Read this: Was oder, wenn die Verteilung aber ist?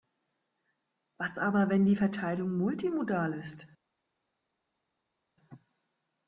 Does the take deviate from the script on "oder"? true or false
true